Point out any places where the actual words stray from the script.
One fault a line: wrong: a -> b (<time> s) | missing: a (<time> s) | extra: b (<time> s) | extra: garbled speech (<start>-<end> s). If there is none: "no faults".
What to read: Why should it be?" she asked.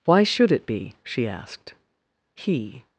extra: He (2.3 s)